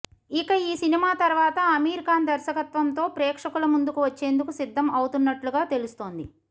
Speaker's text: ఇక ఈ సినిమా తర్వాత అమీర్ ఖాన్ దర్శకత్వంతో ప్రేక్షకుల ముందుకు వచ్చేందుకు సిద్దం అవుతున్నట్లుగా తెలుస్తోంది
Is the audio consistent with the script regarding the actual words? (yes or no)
yes